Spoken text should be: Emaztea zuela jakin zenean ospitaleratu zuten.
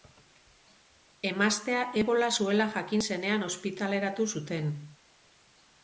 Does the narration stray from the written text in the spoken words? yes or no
yes